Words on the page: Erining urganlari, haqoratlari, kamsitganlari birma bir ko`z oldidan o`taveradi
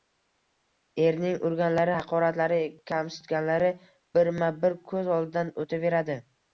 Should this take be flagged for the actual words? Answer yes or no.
no